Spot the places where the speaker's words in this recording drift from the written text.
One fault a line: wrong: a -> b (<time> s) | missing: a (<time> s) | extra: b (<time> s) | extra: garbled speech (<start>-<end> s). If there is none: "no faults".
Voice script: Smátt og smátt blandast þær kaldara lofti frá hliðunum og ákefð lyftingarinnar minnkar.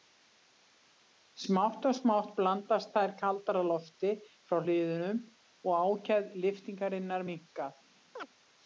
no faults